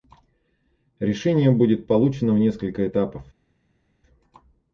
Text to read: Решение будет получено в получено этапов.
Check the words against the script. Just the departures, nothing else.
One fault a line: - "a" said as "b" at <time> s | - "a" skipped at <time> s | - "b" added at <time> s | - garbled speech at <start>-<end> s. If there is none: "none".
- "получено" said as "несколько" at 2.4 s